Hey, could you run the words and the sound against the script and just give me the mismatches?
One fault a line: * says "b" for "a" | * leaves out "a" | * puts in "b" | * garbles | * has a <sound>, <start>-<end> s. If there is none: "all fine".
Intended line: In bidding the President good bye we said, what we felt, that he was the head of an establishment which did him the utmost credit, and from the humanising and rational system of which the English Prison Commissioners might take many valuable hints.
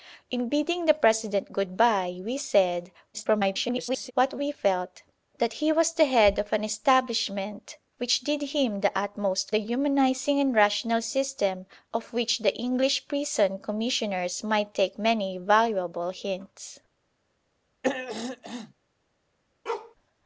* garbles
* leaves out "credit and from"
* has a throat clearing, 17.8-18.7 s
* has a bark, 19.7-20.0 s